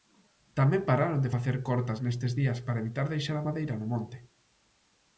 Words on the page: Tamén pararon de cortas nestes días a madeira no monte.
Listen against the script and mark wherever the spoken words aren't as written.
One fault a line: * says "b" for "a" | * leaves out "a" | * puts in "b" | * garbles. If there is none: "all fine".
* puts in "facer"
* puts in "para evitar deixar"